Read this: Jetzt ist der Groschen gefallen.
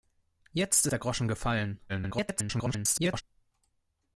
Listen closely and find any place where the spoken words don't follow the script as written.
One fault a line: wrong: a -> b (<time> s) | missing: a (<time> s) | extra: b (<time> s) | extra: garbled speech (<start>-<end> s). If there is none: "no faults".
missing: ist (0.9 s)
extra: garbled speech (1.9-3.2 s)